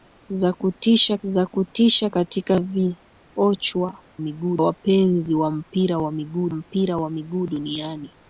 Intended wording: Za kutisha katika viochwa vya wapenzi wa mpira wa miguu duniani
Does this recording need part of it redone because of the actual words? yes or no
yes